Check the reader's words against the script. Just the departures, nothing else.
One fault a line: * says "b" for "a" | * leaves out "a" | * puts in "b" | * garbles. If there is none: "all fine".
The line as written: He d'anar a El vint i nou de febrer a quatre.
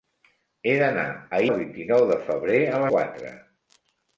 all fine